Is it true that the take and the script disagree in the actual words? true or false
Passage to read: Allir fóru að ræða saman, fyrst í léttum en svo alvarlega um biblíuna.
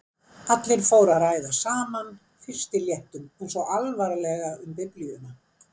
false